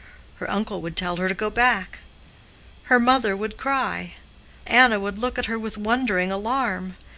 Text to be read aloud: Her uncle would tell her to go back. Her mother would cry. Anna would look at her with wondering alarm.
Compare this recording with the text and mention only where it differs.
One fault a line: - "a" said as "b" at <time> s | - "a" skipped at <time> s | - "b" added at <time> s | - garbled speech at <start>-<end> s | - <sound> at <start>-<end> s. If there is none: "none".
none